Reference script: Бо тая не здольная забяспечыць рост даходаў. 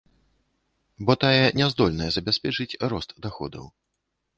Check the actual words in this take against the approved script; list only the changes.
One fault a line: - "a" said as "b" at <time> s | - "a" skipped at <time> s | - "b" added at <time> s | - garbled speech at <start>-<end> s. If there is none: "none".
none